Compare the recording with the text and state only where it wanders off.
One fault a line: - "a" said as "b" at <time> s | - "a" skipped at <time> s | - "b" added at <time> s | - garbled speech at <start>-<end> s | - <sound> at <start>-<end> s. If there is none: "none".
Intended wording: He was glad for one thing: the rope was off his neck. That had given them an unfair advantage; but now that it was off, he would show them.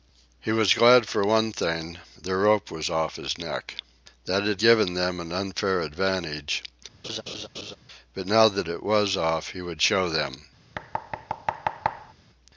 - laugh at 7.0-7.8 s
- thud at 10.7-12.1 s